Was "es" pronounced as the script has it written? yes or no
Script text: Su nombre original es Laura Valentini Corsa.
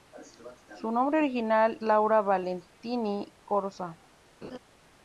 no